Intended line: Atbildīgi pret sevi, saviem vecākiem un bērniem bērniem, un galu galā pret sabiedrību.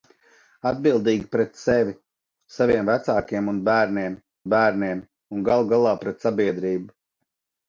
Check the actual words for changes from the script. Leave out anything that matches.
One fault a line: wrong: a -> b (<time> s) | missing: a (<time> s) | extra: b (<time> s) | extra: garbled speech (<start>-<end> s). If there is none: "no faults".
no faults